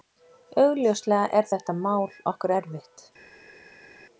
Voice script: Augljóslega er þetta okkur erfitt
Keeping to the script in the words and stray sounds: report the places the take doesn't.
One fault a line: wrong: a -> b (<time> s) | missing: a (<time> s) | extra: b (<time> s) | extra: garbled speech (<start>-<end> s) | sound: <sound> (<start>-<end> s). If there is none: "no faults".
extra: mál (1.8 s)